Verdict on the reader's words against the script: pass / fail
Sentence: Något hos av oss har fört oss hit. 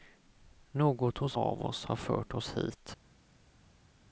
pass